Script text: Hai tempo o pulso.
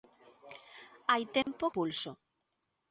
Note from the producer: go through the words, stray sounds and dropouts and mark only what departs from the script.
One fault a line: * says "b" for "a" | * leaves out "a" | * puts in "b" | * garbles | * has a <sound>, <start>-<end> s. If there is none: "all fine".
* has a dropout, 1.4-1.5 s